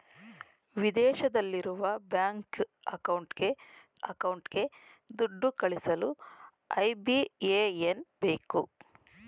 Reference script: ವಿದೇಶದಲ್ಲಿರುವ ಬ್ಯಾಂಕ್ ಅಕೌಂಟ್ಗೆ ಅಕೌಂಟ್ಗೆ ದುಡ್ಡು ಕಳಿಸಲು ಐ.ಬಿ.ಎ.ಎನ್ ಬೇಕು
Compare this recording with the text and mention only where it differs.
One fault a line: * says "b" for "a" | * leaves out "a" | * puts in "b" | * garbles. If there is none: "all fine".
all fine